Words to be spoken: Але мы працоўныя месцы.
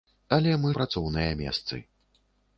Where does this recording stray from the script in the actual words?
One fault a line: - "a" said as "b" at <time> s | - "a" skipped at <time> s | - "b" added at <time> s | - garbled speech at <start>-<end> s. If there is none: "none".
none